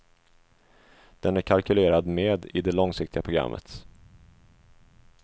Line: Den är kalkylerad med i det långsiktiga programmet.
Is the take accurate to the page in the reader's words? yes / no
yes